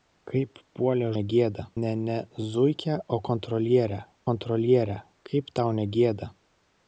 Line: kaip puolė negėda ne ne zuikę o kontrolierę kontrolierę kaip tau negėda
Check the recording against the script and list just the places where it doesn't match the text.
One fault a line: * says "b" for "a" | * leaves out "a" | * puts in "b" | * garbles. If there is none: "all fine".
all fine